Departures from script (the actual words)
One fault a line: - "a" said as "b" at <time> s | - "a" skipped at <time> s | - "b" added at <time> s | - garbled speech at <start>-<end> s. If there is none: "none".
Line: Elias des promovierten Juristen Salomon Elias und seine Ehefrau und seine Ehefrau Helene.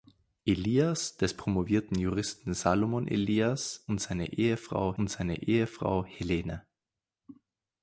none